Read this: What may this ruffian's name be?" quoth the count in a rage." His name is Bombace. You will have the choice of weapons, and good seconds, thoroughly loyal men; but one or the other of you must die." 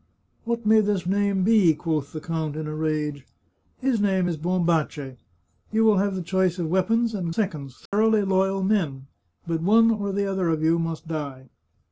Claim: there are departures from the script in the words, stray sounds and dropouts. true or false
true